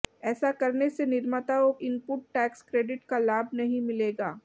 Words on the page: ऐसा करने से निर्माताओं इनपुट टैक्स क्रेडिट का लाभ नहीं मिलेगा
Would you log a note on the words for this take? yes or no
no